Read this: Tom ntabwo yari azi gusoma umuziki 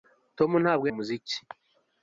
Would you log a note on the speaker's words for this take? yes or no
yes